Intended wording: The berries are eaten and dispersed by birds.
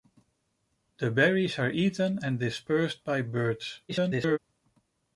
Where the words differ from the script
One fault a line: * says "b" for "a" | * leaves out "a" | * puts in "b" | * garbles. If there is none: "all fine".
* garbles